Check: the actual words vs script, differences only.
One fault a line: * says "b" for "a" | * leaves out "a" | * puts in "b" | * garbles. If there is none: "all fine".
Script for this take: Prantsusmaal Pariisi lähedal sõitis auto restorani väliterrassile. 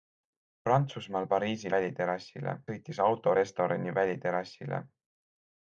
* says "väliterrassile" for "lähedal"